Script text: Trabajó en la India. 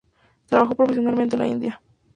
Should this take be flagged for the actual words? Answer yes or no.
yes